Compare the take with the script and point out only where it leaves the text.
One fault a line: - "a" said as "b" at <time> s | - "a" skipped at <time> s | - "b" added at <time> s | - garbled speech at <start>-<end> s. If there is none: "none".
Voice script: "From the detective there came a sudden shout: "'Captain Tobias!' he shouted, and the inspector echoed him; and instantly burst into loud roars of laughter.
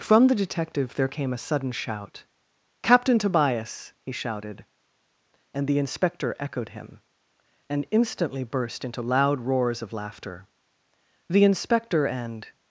- "The inspector and" added at 11.3 s